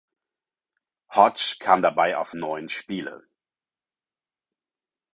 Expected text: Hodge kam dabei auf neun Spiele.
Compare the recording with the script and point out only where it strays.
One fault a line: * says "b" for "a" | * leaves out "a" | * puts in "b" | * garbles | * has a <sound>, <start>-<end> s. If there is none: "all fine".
all fine